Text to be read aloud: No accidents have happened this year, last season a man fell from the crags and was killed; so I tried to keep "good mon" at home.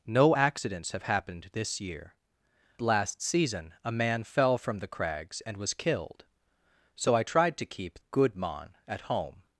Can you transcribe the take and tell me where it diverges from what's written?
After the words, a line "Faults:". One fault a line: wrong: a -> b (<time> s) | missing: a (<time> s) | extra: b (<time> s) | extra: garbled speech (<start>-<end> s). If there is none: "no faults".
No accidents have happened this year, last season a man fell from the crags and was killed; so I tried to keep "good mon" at home.
Faults:
no faults